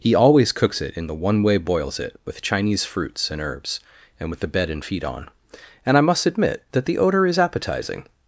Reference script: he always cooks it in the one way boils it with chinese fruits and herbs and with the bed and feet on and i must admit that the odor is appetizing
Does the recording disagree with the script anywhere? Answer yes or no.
no